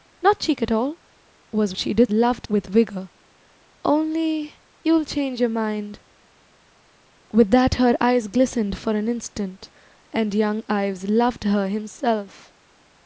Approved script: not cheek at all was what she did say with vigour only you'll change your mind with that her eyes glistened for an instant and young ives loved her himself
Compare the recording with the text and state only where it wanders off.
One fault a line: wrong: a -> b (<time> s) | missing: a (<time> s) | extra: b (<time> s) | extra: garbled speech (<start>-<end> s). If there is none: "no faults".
missing: what (1.8 s)
wrong: say -> loved (2.1 s)